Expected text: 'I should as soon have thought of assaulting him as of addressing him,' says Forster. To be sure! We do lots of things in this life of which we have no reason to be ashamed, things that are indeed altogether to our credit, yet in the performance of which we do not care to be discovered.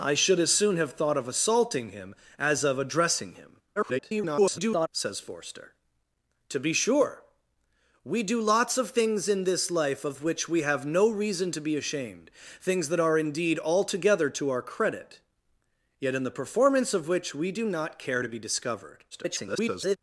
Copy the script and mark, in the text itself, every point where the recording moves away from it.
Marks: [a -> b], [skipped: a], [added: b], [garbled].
'I should as soon have thought of assaulting him as of addressing him,' [garbled] says Forster. To be sure! We do lots of things in this life of which we have no reason to be ashamed, things that are indeed altogether to our credit, yet in the performance of which we do not care to be discovered. [garbled]